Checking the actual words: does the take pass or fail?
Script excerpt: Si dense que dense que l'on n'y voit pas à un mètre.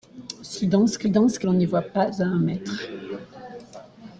pass